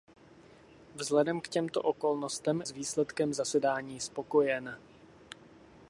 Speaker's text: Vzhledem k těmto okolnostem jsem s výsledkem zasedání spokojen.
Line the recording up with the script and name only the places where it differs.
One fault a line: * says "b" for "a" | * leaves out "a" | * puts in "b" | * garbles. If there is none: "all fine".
* leaves out "jsem"